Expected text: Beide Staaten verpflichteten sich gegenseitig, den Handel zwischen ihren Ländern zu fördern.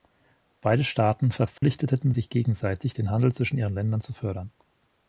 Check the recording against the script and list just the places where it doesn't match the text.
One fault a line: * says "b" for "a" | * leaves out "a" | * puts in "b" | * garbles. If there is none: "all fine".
all fine